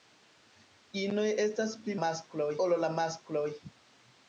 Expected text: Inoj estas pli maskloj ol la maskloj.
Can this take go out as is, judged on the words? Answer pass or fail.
pass